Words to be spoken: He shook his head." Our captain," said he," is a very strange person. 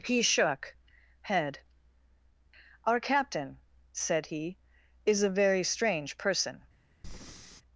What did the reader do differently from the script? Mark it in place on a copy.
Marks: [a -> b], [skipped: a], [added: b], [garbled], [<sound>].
He shook [skipped: his] head." Our captain," said he," is a very strange person. [breath]